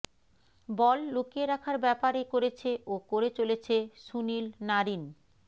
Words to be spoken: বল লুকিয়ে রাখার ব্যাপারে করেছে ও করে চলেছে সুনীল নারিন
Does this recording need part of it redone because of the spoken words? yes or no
no